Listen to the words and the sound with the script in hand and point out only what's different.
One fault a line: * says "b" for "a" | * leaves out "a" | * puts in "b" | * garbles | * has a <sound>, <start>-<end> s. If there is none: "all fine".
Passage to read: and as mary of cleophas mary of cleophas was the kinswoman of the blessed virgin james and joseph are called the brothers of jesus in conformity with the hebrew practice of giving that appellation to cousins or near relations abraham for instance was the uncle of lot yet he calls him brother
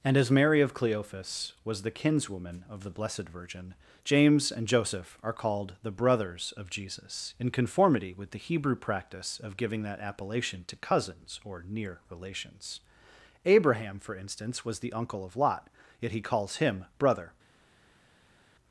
* leaves out "mary of cleophas"